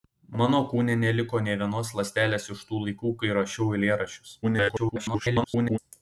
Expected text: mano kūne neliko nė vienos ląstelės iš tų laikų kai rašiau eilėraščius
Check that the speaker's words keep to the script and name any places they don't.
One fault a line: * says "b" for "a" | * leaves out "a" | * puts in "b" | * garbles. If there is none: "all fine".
* garbles